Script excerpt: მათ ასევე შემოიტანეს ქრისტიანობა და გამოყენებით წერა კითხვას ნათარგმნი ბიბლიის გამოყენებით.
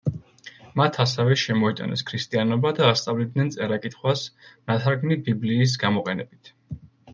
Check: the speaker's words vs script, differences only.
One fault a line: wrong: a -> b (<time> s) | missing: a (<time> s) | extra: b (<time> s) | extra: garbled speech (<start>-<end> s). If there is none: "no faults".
wrong: გამოყენებით -> ასწავლიდნენ (2.9 s)